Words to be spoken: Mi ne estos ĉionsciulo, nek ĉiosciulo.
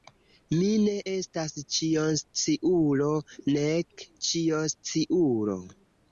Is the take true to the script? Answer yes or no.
no